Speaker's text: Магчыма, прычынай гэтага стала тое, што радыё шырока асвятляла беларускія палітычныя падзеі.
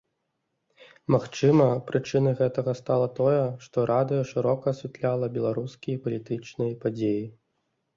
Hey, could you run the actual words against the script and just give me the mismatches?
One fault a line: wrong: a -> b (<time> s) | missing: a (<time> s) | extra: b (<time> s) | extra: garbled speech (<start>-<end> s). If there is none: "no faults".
no faults